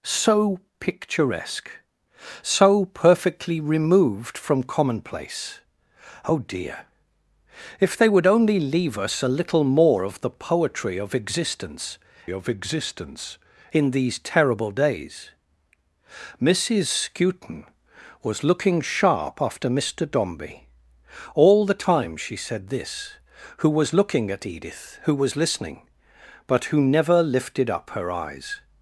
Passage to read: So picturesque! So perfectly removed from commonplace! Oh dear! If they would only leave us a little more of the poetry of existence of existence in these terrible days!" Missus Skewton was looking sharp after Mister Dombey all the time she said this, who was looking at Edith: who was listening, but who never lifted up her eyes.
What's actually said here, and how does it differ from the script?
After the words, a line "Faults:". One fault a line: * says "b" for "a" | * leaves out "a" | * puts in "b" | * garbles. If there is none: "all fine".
So picturesque! So perfectly removed from commonplace! Oh dear! If they would only leave us a little more of the poetry of existence of existence in these terrible days!" Missus Skewton was looking sharp after Mister Dombey all the time she said this, who was looking at Edith: who was listening, but who never lifted up her eyes.
Faults:
all fine